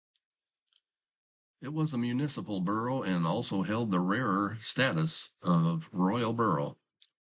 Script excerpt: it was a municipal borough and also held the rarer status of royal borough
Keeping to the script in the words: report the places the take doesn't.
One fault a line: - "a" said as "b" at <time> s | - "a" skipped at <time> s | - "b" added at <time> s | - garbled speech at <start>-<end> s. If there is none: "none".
none